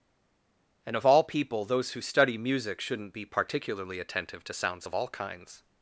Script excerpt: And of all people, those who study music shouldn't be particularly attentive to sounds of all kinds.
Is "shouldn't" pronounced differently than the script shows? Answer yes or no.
no